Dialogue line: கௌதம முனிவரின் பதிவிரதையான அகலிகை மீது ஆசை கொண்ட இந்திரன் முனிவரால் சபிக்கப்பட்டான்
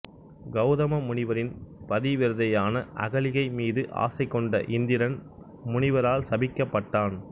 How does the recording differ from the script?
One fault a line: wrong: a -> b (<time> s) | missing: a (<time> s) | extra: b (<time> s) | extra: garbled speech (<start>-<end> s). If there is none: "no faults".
no faults